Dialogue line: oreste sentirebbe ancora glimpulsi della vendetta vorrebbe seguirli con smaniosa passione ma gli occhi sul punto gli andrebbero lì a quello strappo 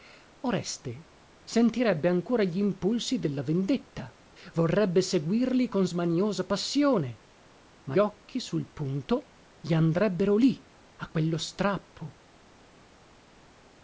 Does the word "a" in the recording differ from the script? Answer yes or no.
no